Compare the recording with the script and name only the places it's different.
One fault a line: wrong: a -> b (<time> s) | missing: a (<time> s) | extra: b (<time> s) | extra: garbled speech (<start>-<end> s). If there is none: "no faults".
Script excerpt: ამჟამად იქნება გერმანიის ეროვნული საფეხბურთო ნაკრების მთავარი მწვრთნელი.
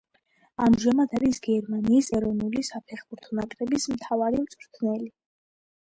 wrong: იქნება -> არის (1.2 s)